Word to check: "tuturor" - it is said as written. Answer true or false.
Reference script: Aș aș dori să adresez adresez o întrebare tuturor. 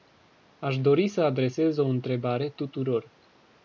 true